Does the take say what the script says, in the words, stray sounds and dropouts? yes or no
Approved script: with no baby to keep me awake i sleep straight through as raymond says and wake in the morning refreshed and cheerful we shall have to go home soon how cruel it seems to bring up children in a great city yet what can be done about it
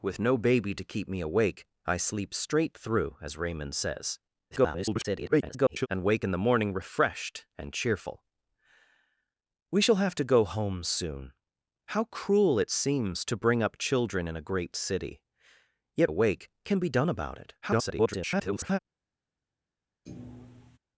no